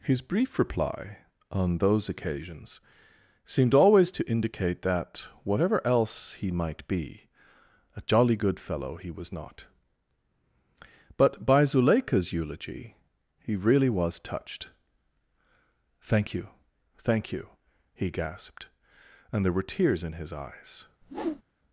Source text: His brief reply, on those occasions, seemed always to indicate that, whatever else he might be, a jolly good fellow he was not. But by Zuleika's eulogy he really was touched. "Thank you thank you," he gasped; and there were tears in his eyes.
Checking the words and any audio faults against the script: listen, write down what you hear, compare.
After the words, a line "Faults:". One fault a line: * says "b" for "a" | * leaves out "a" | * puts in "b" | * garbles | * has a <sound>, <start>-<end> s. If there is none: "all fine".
His brief reply, on those occasions, seemed always to indicate that, whatever else he might be, a jolly good fellow he was not. But by Zuleika's eulogy he really was touched. "Thank you thank you," he gasped; and there were tears in his eyes.
Faults:
* has a whoosh, 21.0-21.4 s